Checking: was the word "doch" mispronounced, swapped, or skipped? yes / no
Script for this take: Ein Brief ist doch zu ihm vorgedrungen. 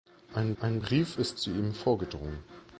yes